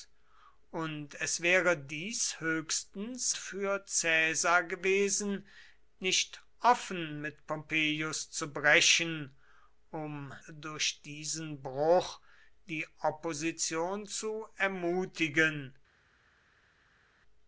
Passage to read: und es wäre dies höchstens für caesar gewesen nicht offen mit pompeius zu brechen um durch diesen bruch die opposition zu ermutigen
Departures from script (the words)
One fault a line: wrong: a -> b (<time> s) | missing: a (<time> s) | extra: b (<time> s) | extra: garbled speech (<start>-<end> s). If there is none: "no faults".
no faults